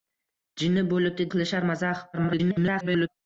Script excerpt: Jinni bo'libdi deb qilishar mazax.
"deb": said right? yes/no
no